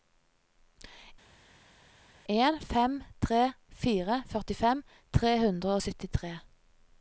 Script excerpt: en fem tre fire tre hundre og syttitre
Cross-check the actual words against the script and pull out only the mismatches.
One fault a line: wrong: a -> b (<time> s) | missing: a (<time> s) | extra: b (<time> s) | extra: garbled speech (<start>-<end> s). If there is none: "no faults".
extra: førtifem (4.3 s)